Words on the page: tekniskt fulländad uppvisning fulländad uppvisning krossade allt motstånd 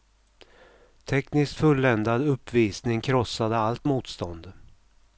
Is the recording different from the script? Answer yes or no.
yes